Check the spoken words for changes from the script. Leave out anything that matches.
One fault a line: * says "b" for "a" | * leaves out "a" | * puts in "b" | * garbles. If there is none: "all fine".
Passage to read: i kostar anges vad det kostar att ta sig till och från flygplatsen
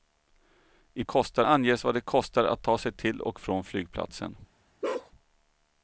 all fine